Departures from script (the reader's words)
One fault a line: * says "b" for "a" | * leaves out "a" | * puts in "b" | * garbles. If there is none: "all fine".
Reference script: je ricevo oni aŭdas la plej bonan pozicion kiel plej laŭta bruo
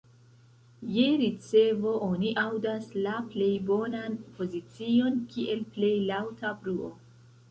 all fine